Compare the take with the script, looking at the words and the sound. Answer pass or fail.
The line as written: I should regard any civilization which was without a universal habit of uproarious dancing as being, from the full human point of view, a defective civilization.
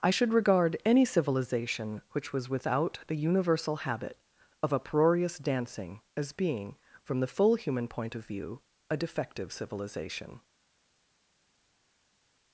fail